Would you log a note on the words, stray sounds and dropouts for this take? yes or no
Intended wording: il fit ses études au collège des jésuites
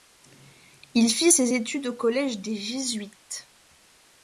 no